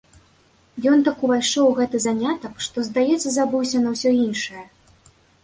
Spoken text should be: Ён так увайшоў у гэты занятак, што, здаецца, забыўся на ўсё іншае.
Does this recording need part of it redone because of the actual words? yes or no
no